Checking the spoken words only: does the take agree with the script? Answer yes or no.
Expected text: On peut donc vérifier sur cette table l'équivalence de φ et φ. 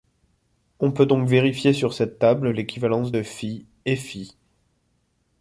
yes